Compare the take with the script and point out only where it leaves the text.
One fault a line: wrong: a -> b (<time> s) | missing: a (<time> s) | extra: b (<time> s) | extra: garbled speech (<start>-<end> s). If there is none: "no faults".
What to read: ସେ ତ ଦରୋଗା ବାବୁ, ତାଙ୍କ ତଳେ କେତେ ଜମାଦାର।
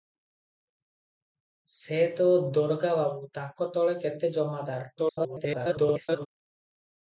extra: garbled speech (5.0-6.3 s)